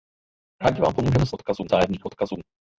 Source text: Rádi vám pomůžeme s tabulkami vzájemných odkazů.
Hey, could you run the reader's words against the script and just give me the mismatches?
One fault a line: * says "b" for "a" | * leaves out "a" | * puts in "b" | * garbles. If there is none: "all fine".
* says "odkazů" for "tabulkami"